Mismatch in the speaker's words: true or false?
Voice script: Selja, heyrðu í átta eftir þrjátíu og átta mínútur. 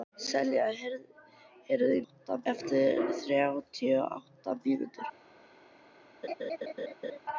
false